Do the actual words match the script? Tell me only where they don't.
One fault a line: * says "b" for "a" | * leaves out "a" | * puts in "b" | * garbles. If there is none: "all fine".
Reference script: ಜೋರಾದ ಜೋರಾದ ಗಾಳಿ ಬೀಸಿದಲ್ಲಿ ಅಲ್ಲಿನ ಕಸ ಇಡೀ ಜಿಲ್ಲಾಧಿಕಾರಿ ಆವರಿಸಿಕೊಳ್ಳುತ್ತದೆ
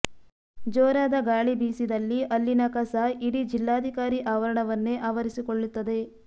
* leaves out "ಜೋರಾದ"
* puts in "ಆವರಣವನ್ನೇ"